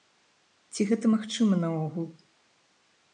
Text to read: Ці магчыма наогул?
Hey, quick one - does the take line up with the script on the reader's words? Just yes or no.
no